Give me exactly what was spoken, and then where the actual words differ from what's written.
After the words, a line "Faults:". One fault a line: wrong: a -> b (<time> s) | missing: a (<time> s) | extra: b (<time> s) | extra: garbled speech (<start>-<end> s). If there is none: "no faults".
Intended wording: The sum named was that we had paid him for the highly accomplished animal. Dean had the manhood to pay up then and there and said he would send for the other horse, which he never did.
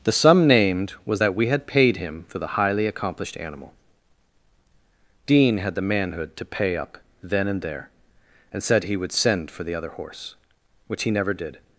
The sum named was that we had paid him for the highly accomplished animal. Dean had the manhood to pay up then and there and said he would send for the other horse, which he never did.
Faults:
no faults